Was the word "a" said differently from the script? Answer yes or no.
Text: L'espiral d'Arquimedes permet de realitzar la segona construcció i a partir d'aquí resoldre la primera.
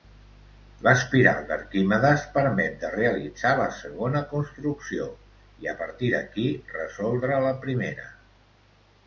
no